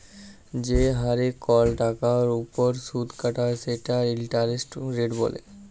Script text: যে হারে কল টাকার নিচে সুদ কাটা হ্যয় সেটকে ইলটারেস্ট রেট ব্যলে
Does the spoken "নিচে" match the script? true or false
false